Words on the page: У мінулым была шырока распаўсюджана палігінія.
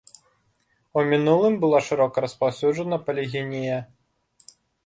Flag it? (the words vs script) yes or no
no